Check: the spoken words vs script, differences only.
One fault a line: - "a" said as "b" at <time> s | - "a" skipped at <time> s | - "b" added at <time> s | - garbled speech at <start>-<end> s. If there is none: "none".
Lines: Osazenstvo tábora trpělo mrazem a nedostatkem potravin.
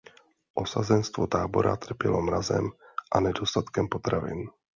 none